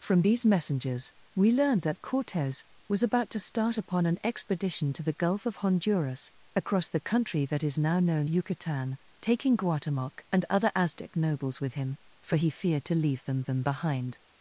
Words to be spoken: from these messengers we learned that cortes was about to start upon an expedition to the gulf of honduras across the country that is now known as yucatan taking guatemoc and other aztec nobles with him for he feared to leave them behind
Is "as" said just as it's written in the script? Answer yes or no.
no